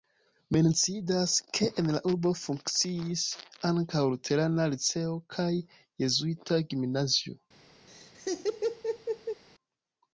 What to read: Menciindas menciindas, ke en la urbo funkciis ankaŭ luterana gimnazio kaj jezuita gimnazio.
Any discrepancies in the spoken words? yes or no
yes